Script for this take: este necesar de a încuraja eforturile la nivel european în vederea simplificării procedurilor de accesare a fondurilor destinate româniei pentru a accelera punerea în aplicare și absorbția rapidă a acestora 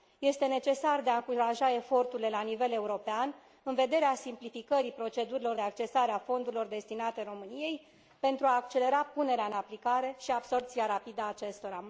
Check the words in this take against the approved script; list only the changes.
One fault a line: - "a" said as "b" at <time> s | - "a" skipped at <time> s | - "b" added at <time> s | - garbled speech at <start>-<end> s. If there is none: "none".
- "de" skipped at 5.6 s